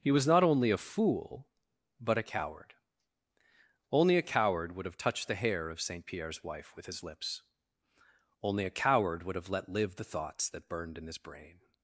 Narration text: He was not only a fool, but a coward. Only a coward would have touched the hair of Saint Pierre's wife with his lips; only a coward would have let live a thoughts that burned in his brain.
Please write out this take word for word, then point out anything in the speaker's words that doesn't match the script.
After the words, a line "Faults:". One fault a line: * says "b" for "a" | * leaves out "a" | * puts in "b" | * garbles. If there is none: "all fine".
He was not only a fool, but a coward. Only a coward would have touched the hair of Saint Pierre's wife with his lips; only a coward would have let live the thoughts that burned in his brain.
Faults:
* says "the" for "a"